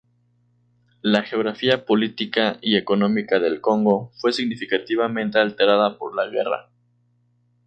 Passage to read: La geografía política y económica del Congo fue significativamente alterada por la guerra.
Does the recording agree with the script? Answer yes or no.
yes